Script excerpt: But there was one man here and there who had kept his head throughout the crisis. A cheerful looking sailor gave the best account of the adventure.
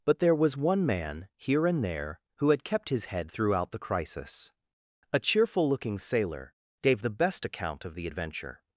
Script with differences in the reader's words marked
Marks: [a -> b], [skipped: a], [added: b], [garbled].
But there was one man here and there who had kept his head throughout the crisis. A cheerful looking sailor gave the best account of the adventure.